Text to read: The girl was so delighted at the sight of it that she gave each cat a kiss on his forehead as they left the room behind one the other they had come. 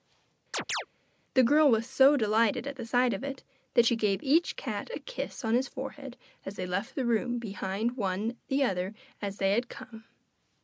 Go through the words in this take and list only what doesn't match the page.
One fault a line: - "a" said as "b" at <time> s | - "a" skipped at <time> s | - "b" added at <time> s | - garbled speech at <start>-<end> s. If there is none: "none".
- "as" added at 9.2 s